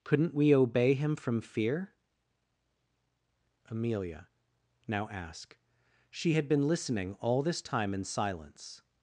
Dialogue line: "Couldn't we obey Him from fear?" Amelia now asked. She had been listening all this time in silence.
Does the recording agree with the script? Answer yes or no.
no